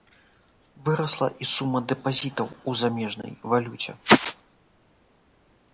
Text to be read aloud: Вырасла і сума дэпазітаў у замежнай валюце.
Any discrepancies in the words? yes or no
no